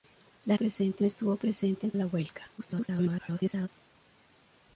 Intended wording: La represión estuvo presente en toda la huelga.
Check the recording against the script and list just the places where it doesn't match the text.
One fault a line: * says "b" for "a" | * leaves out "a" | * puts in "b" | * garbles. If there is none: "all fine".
* says "presente" for "represión"
* leaves out "toda"
* garbles